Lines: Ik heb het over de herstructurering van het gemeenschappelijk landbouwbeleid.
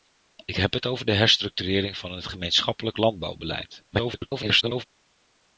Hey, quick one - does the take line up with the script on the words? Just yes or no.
no